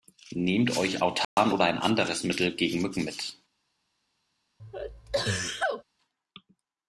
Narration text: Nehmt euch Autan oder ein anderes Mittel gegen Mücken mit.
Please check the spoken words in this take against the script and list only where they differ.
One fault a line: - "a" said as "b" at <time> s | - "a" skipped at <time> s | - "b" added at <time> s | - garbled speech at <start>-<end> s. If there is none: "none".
none